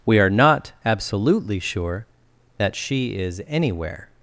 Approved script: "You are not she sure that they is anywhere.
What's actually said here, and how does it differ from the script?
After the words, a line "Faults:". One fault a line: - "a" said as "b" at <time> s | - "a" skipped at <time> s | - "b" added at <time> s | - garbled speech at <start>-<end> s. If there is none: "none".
"We are not absolutely sure that she is anywhere.
Faults:
- "You" said as "We" at 0.1 s
- "she" said as "absolutely" at 0.8 s
- "they" said as "she" at 2.7 s